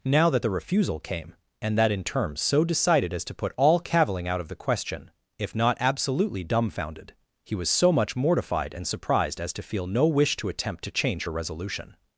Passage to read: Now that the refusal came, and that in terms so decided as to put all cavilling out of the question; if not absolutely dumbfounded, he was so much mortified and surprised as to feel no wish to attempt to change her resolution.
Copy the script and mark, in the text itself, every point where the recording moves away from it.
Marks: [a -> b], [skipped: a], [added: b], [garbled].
Now that the refusal came, and that in terms so decided as to put all cavilling out of the question; if not absolutely dumbfounded, he was so much mortified and surprised as to feel no wish to attempt to change her resolution.